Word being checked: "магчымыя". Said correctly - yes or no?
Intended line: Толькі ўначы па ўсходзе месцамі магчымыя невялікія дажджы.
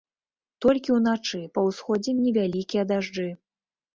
no